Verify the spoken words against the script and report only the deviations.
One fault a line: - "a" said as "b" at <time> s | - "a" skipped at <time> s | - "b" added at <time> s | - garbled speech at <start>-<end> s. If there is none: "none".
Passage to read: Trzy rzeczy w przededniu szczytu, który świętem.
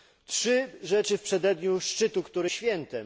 none